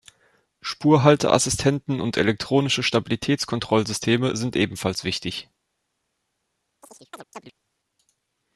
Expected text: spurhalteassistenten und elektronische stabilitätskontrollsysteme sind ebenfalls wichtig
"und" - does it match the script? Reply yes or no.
yes